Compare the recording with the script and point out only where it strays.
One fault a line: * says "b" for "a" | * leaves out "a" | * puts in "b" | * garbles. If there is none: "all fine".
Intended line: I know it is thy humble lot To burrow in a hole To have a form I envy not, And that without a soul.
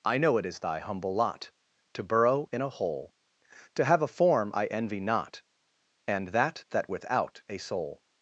* puts in "that"